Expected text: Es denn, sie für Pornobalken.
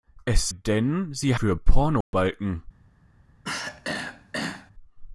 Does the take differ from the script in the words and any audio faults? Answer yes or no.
yes